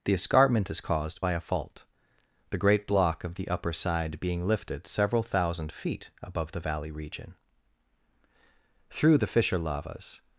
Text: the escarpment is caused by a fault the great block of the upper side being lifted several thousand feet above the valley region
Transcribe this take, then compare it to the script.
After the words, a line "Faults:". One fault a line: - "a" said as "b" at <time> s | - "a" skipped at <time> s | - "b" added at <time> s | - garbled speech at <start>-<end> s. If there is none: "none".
the escarpment is caused by a fault the great block of the upper side being lifted several thousand feet above the valley region through the fissure lavas
Faults:
- "through the fissure lavas" added at 8.9 s